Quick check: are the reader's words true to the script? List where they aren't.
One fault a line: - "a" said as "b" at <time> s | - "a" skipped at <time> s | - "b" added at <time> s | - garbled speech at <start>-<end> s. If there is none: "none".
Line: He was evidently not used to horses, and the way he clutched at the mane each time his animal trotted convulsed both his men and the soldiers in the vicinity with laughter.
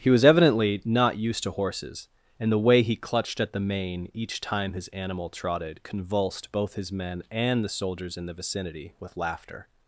none